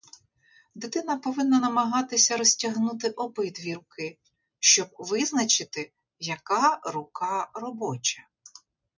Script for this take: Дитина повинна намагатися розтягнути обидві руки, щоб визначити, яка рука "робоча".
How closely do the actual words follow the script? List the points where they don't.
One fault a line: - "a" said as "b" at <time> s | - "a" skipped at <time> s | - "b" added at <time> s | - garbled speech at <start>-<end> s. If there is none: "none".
none